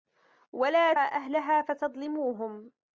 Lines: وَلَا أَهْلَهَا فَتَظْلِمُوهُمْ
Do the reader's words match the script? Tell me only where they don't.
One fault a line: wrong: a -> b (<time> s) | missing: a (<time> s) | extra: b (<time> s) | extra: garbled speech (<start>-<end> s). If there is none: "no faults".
no faults